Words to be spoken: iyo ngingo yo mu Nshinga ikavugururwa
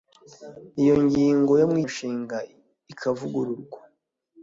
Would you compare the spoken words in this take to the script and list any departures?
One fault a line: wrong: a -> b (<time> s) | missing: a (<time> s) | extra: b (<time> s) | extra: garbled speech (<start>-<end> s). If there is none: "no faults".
no faults